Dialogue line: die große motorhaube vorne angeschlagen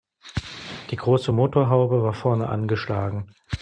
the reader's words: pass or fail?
fail